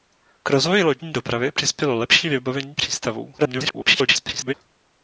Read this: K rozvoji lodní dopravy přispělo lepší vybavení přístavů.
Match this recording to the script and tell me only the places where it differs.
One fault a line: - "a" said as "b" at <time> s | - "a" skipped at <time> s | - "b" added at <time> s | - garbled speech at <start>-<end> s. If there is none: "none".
- garbled speech at 3.4-4.5 s